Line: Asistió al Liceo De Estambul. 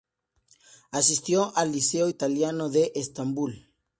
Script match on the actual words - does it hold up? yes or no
no